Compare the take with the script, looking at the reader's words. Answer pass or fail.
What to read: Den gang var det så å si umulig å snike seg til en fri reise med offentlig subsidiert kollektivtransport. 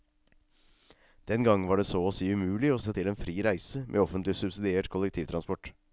fail